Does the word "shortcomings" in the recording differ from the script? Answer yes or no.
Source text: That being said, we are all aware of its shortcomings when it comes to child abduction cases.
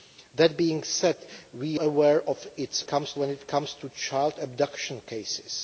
yes